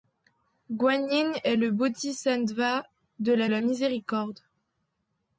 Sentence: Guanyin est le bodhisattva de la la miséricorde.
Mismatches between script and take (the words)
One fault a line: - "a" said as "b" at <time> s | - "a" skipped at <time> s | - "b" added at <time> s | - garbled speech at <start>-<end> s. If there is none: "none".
none